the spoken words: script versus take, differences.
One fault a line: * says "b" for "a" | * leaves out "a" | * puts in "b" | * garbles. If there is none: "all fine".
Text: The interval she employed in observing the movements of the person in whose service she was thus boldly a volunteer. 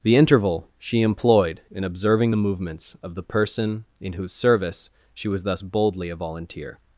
all fine